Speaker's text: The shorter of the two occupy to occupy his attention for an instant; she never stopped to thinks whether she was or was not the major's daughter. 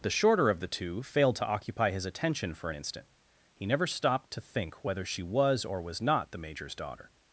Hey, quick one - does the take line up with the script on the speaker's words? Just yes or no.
no